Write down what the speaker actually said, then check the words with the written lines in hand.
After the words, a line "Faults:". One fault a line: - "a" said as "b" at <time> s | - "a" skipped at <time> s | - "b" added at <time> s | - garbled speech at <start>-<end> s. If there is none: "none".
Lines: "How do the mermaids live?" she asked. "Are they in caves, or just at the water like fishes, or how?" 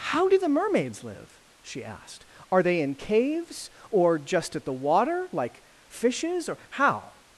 "How do the mermaids live?" she asked. "Are they in caves, or just at the water like fishes, or how?"
Faults:
none